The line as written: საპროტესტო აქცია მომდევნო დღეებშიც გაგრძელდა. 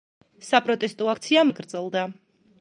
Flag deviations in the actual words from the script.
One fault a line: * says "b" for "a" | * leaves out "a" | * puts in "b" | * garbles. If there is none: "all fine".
* leaves out "მომდევნო დღეებშიც"